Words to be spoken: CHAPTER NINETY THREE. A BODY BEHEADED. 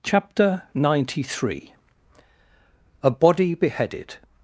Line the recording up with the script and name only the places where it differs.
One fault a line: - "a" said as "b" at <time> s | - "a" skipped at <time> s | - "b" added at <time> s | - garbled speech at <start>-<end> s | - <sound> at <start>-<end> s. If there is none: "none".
none